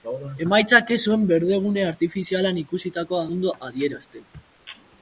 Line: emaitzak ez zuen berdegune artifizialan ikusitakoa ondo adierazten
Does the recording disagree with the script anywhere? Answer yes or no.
no